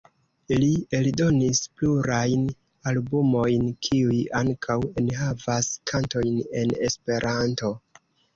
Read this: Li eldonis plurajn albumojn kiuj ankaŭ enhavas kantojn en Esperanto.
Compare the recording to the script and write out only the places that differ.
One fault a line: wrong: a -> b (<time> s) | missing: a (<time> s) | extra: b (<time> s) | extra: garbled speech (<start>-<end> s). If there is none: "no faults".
no faults